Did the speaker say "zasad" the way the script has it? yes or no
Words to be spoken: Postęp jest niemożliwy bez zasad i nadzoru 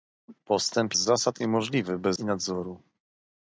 no